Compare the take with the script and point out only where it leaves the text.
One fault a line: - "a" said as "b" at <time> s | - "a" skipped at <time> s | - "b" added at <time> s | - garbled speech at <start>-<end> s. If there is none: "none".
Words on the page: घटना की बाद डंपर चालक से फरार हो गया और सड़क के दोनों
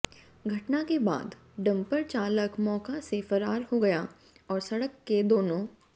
- "की" said as "के" at 0.8 s
- "मौका" added at 2.6 s